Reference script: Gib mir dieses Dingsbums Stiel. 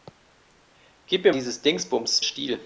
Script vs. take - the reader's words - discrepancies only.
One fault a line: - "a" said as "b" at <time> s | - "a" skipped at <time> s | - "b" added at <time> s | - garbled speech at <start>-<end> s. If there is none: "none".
none